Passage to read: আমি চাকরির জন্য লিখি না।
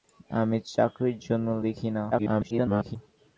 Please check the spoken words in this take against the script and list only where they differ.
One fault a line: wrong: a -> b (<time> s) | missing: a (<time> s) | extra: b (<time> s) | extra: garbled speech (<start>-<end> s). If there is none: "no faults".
extra: garbled speech (2.1-3.0 s)